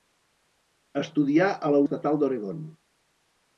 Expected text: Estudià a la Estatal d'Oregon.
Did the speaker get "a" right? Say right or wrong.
right